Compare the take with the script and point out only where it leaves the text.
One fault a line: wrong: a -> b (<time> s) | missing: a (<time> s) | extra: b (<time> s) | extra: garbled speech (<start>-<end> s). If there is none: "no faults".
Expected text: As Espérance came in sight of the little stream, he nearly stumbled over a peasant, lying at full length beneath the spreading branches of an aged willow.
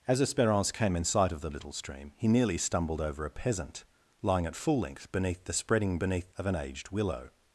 wrong: branches -> beneath (6.0 s)